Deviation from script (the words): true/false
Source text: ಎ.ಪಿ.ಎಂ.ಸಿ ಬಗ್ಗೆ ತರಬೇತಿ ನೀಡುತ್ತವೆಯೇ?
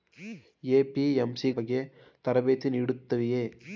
false